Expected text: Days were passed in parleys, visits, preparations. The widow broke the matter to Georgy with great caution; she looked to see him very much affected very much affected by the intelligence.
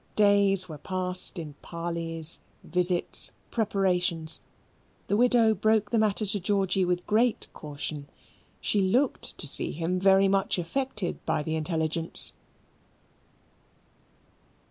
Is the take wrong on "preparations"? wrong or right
right